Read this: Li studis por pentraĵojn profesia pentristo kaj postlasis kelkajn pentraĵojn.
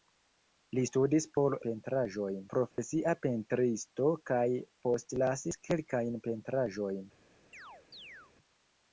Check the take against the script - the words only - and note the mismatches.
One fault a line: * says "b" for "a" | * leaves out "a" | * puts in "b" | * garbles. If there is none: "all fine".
all fine